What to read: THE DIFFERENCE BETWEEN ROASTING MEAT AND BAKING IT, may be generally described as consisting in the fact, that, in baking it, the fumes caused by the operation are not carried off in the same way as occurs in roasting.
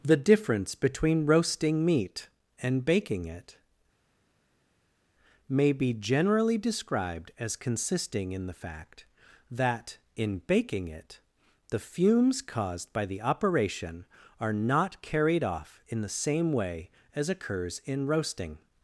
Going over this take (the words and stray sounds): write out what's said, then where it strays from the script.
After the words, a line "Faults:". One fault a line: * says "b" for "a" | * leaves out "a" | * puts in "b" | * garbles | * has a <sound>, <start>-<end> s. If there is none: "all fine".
THE DIFFERENCE BETWEEN ROASTING MEAT AND BAKING IT, may be generally described as consisting in the fact, that, in baking it, the fumes caused by the operation are not carried off in the same way as occurs in roasting.
Faults:
all fine